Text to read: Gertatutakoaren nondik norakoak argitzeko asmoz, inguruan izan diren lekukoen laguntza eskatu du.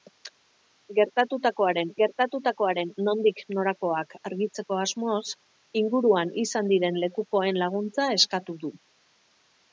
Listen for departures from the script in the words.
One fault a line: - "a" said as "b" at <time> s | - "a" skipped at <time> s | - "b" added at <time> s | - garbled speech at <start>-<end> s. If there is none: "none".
- "gertatutakoaren" added at 2.0 s